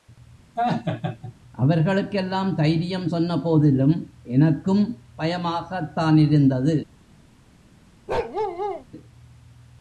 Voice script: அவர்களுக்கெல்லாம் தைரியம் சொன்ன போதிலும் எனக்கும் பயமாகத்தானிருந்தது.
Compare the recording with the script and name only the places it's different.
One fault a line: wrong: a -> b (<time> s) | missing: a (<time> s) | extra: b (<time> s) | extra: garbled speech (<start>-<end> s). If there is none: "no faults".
no faults